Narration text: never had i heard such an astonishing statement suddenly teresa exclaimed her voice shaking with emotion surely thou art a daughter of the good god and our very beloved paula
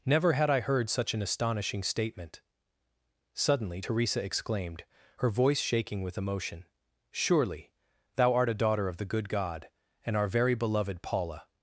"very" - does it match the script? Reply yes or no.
yes